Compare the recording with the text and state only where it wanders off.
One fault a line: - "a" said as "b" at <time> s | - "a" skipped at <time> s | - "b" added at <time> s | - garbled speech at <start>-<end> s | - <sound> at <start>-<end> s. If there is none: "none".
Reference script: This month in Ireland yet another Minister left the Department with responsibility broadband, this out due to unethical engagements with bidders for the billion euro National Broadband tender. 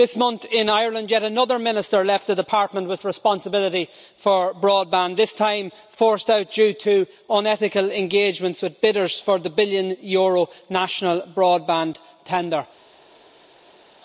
- "for" added at 4.2 s
- "time forced" added at 5.3 s